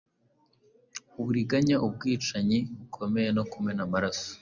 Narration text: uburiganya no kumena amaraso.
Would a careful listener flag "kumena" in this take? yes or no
no